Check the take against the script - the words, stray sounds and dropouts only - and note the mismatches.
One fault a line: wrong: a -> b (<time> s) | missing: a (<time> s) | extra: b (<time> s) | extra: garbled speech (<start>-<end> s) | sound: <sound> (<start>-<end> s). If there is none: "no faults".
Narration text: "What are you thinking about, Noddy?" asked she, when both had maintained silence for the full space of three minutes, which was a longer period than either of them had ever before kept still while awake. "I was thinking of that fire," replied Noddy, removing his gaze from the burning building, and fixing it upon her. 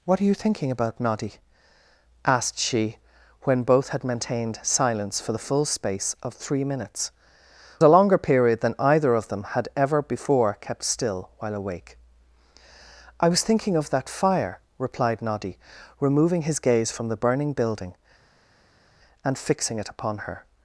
missing: which was (7.1 s)